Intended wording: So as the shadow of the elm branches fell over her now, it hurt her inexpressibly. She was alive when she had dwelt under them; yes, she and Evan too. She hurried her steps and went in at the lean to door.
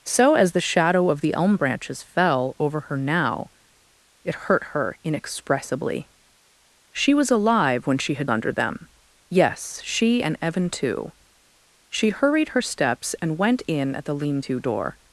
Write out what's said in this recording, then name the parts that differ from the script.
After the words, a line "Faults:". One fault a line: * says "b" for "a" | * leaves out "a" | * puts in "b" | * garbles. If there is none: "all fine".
So as the shadow of the elm branches fell over her now, it hurt her inexpressibly. She was alive when she had under them; yes, she and Evan too. She hurried her steps and went in at the lean to door.
Faults:
* leaves out "dwelt"